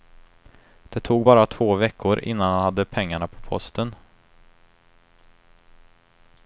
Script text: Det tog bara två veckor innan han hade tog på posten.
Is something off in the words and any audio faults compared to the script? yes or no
yes